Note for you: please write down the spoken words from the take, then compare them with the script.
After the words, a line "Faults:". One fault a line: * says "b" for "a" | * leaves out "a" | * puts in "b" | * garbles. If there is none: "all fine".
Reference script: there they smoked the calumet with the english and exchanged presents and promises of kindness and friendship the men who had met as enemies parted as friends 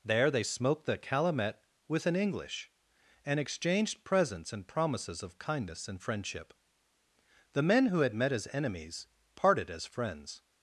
there they smoked the calumet with an english and exchanged presents and promises of kindness and friendship the men who had met as enemies parted as friends
Faults:
* says "an" for "the"